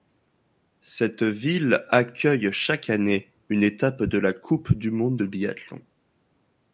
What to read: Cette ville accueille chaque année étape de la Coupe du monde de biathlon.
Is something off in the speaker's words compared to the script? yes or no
yes